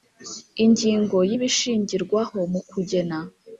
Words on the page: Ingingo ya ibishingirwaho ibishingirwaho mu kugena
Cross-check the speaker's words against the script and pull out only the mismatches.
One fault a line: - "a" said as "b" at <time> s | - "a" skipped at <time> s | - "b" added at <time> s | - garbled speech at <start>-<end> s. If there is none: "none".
- "ibishingirwaho" skipped at 2.4 s